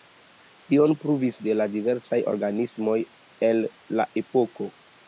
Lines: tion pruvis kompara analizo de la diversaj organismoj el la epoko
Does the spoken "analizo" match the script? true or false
false